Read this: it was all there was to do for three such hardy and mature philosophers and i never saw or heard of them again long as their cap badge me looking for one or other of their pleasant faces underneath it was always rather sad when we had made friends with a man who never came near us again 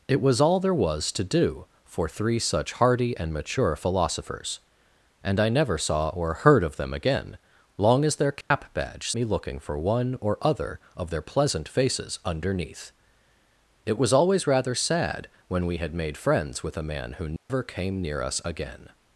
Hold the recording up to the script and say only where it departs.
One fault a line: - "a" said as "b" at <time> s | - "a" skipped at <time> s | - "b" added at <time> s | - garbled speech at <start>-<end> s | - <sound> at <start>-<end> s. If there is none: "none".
- dropout at 8.4-8.5 s
- dropout at 17.4-17.5 s